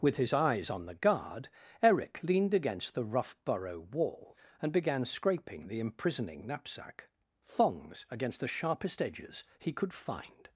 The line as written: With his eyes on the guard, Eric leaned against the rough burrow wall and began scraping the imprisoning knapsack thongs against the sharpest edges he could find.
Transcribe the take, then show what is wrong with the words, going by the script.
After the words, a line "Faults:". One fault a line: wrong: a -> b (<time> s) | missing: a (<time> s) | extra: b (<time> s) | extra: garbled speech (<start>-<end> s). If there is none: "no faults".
With his eyes on the guard, Eric leaned against the rough burrow wall and began scraping the imprisoning knapsack thongs against the sharpest edges he could find.
Faults:
no faults